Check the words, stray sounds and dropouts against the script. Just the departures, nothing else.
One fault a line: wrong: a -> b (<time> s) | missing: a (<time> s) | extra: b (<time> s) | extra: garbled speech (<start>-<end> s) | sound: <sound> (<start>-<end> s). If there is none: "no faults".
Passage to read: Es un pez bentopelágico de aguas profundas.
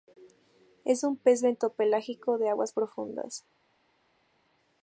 no faults